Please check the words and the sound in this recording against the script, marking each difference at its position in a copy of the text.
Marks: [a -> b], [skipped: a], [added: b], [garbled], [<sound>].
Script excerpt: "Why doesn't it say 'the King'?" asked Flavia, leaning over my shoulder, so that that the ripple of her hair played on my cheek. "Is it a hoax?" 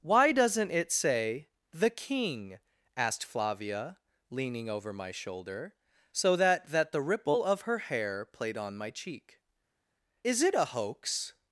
"Why doesn't it say 'the King'?" asked Flavia, leaning over my shoulder, so that that the ripple of her hair played on my cheek. "Is it a hoax?"